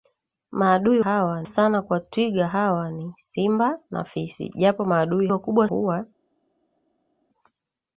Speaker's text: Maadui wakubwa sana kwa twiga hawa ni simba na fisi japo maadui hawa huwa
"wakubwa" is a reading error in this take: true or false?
true